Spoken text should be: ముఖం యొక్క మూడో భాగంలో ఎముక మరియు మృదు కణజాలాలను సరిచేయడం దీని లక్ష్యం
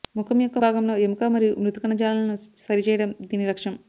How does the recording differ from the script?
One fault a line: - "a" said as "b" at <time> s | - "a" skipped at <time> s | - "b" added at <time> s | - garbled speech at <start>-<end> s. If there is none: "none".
- "మూడో" skipped at 0.6 s